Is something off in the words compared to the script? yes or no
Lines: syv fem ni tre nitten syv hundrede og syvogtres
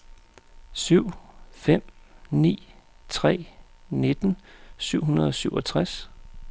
no